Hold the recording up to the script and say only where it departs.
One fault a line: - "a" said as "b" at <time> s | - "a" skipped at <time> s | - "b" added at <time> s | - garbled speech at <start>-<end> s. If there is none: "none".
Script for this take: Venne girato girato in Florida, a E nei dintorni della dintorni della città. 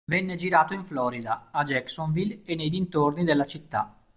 - "girato" skipped at 0.7 s
- "Jacksonville" added at 1.6 s
- "dintorni della" skipped at 3.5 s